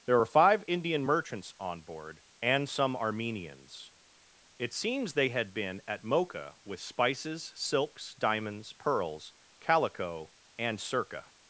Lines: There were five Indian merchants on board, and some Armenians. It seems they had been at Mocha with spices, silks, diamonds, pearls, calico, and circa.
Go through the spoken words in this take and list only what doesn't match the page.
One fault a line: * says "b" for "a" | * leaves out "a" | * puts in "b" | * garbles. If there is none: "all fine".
all fine